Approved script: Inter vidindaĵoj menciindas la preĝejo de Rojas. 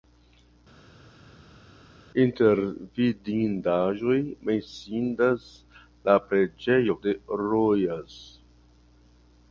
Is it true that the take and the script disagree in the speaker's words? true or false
false